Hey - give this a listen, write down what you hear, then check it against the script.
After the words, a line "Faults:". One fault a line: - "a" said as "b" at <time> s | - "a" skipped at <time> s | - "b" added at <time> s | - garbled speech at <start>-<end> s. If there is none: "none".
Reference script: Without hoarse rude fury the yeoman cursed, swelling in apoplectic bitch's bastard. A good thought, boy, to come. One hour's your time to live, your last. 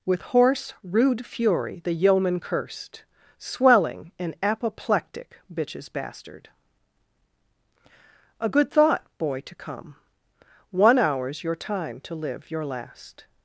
With hoarse rude fury the yeoman cursed, swelling in apoplectic bitch's bastard. A good thought, boy, to come. One hour's your time to live, your last.
Faults:
- "Without" said as "With" at 0.0 s